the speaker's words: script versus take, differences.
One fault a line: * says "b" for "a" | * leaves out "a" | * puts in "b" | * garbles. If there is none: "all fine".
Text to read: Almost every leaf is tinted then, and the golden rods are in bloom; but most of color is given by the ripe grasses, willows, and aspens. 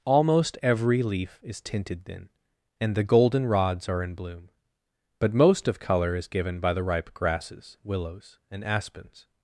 all fine